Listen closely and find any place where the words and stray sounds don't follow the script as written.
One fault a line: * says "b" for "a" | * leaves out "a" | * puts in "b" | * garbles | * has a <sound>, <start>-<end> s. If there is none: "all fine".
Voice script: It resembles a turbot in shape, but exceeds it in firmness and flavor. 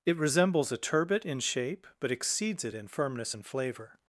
all fine